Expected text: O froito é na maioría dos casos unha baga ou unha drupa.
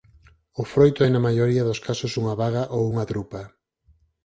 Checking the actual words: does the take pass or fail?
pass